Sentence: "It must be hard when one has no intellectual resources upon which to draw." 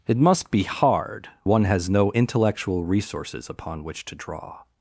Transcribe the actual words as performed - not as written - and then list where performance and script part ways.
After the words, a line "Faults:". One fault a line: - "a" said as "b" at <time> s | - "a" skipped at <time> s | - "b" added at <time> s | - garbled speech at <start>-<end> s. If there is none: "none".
"It must be hard one has no intellectual resources upon which to draw."
Faults:
- "when" skipped at 1.3 s